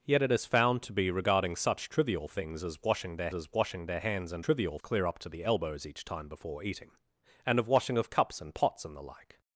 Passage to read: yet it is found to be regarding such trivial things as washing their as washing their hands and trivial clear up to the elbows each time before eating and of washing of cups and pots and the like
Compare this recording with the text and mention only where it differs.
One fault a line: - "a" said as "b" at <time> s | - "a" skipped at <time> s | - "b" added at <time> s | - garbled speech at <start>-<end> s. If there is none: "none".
none